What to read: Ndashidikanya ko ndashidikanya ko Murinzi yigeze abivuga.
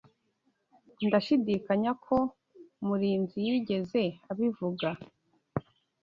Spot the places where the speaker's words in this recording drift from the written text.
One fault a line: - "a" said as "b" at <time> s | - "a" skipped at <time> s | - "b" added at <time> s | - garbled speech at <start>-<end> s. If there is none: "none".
- "ndashidikanya ko" skipped at 2.2 s